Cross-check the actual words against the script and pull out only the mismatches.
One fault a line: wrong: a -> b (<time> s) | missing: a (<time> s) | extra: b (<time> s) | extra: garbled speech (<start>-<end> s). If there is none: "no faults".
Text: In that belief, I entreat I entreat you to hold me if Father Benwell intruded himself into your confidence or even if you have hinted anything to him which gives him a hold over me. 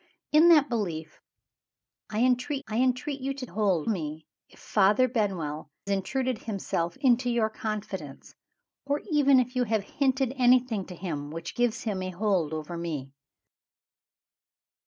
no faults